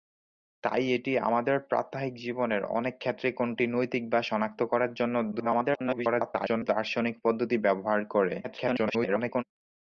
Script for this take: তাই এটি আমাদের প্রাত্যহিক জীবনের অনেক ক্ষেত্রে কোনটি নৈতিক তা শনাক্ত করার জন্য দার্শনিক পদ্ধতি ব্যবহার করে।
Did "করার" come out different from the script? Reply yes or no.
no